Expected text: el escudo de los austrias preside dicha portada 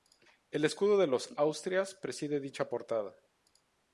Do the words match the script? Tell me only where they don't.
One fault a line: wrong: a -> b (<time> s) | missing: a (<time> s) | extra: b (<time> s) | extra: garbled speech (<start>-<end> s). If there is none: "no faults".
no faults